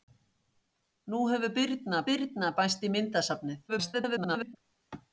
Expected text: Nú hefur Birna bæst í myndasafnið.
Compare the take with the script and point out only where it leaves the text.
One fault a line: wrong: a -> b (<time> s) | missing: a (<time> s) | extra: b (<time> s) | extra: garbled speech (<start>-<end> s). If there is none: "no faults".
extra: Birna (2.1 s)
extra: garbled speech (3.7-4.6 s)